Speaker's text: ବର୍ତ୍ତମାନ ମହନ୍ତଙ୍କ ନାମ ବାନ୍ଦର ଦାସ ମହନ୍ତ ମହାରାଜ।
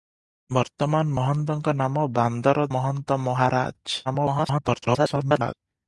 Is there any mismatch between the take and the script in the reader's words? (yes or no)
yes